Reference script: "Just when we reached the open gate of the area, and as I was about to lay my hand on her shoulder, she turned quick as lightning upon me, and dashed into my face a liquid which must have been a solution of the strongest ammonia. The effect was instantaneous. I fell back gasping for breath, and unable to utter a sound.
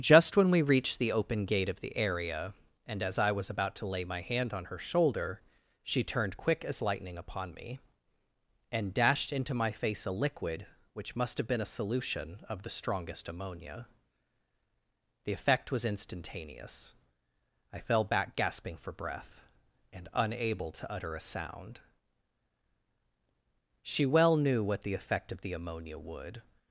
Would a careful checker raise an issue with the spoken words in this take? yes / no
yes